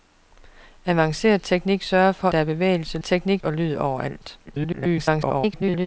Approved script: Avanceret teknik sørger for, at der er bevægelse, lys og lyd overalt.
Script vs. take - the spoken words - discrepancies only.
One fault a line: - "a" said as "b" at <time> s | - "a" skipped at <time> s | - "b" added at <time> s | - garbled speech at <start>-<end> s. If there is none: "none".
- "at" skipped at 2.3 s
- "lys" said as "teknik" at 3.0 s
- garbled speech at 4.5-5.9 s